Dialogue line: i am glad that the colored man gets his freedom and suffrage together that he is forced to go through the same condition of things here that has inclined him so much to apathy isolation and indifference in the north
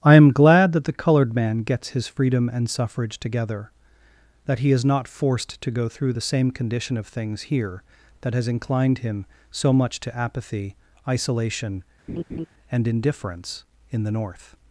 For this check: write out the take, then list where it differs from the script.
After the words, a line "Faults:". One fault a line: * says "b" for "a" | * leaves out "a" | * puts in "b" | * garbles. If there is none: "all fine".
i am glad that the colored man gets his freedom and suffrage together that he is not forced to go through the same condition of things here that has inclined him so much to apathy isolation and indifference in the north
Faults:
* puts in "not"